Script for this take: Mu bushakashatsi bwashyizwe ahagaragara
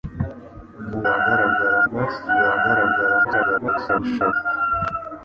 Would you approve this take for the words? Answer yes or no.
no